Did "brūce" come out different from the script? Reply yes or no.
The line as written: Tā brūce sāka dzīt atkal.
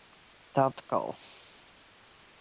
yes